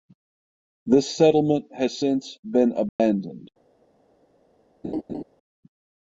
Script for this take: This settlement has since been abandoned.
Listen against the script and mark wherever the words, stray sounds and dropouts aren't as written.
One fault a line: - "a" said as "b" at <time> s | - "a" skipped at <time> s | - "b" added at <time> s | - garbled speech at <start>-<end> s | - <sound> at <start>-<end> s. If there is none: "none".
- dropout at 2.9-3.0 s
- laugh at 4.8-5.2 s